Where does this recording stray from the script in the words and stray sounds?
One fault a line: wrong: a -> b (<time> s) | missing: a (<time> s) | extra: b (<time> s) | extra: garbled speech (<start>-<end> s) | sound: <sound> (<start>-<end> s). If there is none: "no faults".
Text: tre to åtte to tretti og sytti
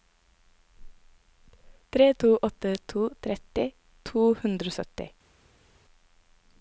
extra: to hundre (4.1 s)